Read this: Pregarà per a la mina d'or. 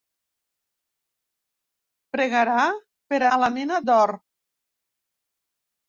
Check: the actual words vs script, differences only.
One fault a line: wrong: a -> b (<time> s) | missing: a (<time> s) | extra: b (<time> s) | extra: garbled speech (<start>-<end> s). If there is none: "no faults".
no faults